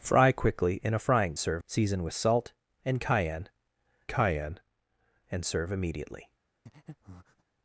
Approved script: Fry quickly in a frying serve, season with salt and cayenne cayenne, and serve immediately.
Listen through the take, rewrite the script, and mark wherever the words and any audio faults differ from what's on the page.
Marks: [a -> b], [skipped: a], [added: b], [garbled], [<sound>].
Fry quickly in a frying serve, season with salt and cayenne cayenne, and serve immediately. [breath]